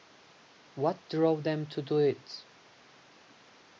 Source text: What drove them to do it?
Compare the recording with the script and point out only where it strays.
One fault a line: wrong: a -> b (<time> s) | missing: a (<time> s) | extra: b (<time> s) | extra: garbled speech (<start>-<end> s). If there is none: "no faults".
no faults